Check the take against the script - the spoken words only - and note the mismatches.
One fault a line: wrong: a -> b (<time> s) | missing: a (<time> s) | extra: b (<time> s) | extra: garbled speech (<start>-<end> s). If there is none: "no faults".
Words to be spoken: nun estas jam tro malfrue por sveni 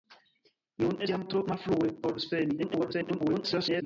missing: estas (1.1 s)
extra: garbled speech (2.6-3.8 s)